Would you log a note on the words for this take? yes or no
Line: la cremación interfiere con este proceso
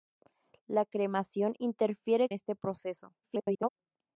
yes